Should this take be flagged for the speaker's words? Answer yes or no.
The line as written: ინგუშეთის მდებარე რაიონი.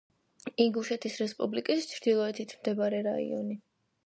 yes